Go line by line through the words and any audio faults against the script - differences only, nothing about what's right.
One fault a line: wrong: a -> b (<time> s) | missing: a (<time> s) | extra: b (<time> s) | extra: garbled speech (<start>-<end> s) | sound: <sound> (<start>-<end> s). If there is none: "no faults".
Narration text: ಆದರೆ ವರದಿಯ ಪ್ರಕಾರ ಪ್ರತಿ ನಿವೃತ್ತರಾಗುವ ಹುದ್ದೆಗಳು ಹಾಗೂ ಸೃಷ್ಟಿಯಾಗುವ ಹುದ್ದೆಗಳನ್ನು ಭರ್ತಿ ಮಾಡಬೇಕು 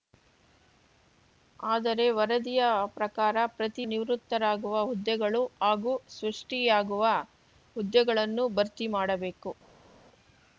no faults